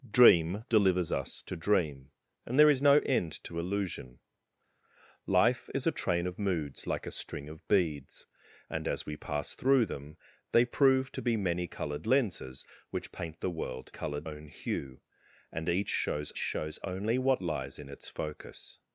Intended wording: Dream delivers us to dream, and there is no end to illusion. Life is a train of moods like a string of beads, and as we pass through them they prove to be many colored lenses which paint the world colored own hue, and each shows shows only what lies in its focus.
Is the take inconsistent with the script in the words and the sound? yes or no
no